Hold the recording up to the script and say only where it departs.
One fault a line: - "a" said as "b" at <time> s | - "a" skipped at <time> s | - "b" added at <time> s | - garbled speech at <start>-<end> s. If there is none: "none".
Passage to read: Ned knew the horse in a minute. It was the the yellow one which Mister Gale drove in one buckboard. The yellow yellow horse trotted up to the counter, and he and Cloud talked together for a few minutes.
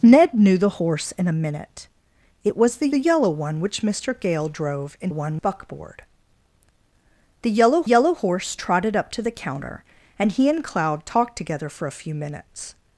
none